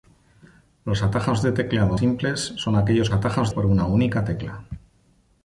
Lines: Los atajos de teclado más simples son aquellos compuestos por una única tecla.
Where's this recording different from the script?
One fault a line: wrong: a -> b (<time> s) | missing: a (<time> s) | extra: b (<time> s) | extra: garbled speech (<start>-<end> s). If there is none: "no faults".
missing: más (2.0 s)
wrong: compuestos -> atajos (3.1 s)